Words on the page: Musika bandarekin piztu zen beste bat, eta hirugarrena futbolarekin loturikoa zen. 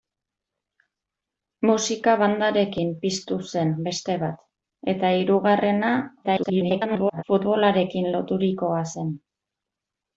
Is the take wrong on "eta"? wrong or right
right